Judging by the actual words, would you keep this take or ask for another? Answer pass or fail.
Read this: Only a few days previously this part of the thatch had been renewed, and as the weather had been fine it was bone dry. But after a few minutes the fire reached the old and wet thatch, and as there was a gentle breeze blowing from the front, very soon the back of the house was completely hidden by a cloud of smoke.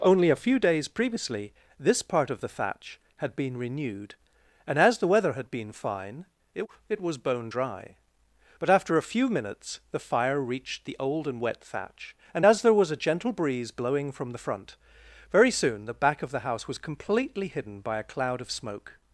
fail